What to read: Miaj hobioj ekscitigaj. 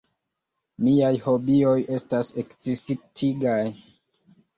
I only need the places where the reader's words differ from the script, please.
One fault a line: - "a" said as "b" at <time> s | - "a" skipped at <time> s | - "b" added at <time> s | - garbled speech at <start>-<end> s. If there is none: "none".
- "estas" added at 2.0 s